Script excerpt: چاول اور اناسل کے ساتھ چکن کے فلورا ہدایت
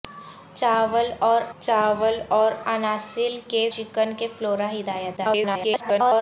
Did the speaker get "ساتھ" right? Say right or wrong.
wrong